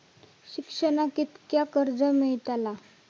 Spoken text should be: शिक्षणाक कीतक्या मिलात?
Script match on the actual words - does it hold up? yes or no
no